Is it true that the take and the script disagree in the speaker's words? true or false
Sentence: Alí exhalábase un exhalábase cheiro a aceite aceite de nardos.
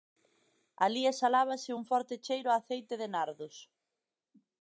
true